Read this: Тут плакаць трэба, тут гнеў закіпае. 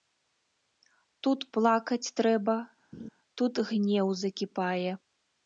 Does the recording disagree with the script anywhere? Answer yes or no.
no